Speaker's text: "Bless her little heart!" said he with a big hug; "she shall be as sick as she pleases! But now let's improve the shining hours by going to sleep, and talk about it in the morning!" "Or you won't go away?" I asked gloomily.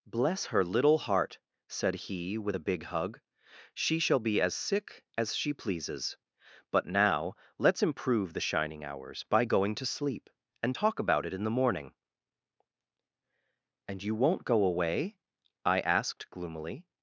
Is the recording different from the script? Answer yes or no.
yes